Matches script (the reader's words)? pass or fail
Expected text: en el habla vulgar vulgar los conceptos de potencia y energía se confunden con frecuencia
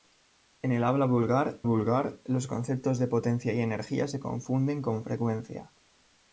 pass